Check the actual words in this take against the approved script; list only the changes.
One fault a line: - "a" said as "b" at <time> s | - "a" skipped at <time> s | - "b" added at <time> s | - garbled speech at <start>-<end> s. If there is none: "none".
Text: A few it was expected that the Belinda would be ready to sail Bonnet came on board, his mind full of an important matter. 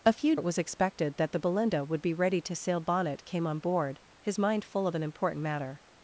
none